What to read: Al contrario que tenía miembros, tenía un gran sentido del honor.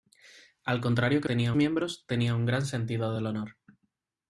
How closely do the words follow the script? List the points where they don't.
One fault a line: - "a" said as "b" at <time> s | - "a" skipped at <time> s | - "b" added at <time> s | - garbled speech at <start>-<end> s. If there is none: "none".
none